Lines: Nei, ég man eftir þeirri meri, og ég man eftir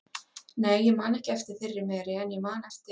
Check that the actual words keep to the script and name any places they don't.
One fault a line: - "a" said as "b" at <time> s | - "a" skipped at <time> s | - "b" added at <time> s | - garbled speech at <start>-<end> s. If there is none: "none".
- "ekki" added at 1.2 s
- "og" said as "en" at 2.2 s